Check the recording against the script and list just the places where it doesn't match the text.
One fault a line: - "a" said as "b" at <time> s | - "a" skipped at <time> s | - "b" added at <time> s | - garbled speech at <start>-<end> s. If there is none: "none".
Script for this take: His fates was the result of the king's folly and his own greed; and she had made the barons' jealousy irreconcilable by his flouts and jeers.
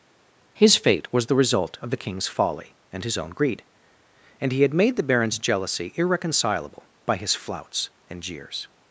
- "fates" said as "fate" at 0.7 s
- "she" said as "he" at 4.5 s